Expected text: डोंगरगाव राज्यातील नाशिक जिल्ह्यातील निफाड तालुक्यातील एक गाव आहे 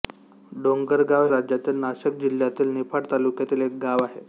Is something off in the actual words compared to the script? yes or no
no